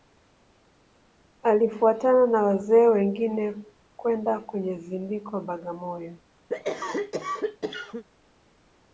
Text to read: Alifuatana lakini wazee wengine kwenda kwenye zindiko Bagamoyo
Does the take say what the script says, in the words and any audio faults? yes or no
no